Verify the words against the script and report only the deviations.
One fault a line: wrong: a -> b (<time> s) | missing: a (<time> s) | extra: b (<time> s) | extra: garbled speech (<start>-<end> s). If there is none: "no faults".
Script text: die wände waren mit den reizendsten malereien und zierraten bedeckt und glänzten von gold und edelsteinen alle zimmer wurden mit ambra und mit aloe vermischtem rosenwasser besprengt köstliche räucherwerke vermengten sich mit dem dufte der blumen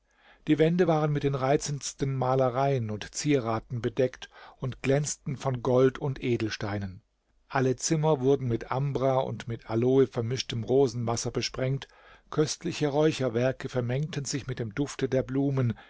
no faults